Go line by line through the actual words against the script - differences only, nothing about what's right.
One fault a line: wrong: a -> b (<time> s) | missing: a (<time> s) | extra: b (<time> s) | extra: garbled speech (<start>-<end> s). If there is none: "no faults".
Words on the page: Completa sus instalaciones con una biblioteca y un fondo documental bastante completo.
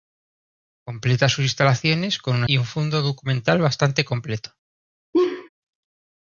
missing: biblioteca (2.5 s)